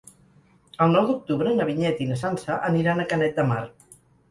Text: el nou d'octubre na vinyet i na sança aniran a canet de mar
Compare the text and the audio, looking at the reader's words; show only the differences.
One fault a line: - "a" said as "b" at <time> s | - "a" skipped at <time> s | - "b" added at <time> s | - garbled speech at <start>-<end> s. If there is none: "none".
none